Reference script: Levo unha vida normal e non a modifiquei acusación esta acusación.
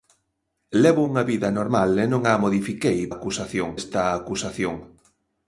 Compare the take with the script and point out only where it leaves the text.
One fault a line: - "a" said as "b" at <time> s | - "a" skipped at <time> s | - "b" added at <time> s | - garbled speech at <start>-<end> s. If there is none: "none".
none